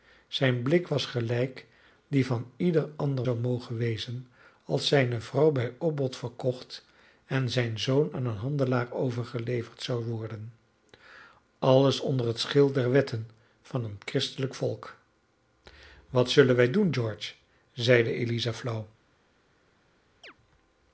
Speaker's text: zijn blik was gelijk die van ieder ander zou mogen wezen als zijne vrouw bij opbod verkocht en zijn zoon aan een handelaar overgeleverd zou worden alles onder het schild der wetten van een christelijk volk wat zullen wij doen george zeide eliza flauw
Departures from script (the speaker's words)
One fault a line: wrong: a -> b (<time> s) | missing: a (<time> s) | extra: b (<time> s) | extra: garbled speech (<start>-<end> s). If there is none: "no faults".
no faults